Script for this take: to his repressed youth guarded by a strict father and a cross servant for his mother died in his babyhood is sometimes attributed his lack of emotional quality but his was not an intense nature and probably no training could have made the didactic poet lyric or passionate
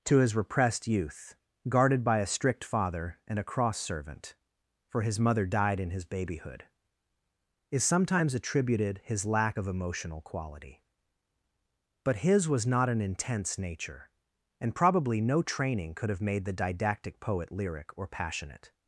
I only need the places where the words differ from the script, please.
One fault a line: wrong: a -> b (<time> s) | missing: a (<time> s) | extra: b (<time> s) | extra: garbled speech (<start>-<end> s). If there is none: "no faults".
no faults